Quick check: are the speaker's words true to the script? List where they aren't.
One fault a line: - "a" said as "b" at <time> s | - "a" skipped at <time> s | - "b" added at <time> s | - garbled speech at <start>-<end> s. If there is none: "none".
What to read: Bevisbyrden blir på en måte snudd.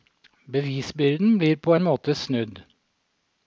none